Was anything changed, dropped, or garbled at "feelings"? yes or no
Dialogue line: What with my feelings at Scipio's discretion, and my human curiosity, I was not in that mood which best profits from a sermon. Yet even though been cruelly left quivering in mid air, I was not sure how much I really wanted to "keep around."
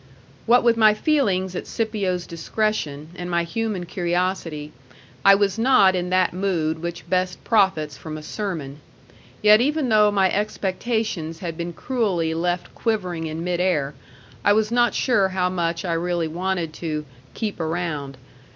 no